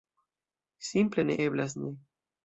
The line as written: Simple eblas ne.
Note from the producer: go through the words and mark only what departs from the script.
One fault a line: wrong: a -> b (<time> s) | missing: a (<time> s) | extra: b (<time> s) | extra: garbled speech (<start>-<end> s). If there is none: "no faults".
extra: ne (1.2 s)